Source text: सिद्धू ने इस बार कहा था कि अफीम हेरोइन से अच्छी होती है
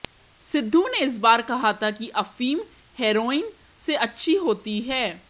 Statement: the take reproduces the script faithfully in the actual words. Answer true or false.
true